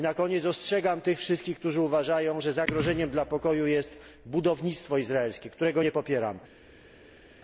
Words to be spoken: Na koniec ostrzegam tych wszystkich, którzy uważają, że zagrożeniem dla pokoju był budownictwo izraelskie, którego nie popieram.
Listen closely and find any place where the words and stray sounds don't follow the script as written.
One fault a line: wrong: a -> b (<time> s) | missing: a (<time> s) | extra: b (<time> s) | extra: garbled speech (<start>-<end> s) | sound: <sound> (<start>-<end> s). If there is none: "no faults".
wrong: był -> jest (3.7 s)